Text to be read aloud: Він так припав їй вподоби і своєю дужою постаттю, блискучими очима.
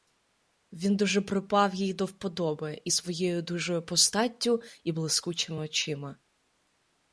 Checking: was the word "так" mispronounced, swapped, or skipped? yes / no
yes